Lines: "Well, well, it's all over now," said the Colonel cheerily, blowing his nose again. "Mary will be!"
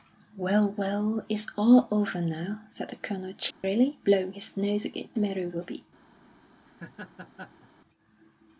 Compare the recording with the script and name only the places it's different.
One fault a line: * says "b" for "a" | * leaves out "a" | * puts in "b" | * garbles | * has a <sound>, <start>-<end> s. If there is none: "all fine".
* has a dropout, 3.5-3.6 s
* has a laugh, 6.7-7.7 s